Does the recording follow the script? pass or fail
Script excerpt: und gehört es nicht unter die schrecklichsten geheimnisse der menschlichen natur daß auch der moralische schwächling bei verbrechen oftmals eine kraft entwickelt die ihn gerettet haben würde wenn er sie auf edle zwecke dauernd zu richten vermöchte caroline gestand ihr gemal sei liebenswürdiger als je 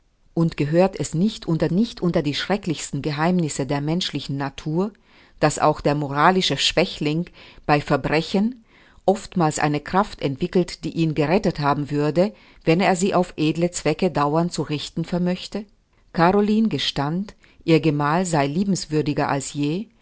fail